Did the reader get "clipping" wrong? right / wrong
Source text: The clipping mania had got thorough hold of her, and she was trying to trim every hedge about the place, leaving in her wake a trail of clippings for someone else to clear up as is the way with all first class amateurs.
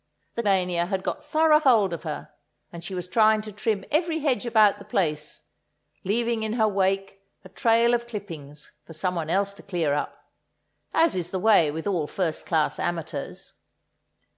wrong